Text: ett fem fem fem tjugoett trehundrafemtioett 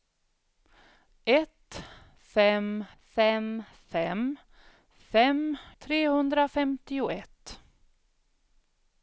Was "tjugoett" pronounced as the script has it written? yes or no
no